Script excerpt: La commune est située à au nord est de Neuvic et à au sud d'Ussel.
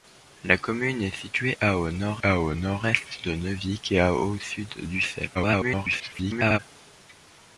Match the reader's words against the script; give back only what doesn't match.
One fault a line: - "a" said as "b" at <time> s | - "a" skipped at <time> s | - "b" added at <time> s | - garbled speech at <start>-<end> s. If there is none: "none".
- "à au nord" added at 2.2 s
- garbled speech at 5.3-6.6 s